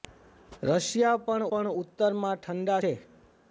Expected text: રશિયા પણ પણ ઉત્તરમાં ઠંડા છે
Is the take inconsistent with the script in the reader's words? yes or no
no